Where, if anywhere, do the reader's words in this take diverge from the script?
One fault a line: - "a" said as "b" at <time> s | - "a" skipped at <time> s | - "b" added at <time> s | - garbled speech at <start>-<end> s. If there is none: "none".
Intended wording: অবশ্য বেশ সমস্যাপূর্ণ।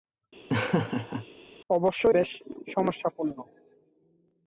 none